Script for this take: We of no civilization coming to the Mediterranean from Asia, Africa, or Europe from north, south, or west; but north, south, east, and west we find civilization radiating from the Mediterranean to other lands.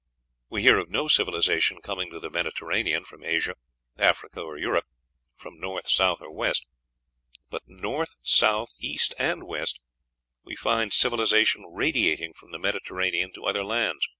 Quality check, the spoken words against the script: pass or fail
fail